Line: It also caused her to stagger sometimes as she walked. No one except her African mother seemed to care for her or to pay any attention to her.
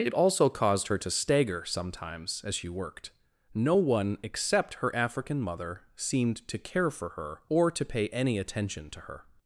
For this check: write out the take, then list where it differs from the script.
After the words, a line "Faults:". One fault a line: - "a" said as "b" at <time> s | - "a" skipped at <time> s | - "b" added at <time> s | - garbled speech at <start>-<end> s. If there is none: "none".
It also caused her to stagger sometimes as she worked. No one except her African mother seemed to care for her or to pay any attention to her.
Faults:
- "walked" said as "worked" at 2.7 s